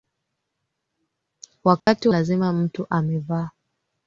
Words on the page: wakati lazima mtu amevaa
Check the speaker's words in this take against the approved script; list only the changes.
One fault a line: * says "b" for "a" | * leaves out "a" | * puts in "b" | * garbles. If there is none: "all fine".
all fine